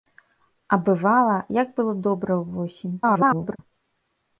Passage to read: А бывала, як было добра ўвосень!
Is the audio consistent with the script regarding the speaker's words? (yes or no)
no